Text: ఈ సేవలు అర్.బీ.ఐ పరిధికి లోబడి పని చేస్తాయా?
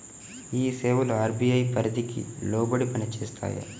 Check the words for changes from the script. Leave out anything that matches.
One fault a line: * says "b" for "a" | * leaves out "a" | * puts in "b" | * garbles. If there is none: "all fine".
all fine